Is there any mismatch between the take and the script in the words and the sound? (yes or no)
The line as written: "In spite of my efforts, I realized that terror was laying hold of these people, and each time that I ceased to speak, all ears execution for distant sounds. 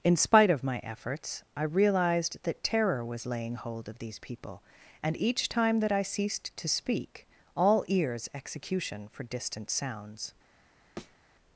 yes